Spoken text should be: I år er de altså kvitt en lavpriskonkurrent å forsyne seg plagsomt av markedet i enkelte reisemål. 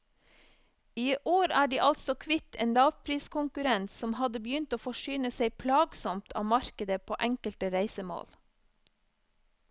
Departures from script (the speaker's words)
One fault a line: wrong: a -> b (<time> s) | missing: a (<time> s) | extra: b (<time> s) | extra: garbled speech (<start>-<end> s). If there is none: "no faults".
extra: som hadde begynt (3.9 s)
wrong: i -> på (7.1 s)